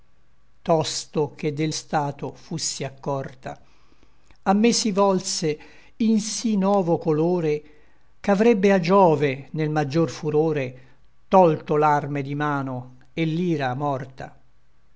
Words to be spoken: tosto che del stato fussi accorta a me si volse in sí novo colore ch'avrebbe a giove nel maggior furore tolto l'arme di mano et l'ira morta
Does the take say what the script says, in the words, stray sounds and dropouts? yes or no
yes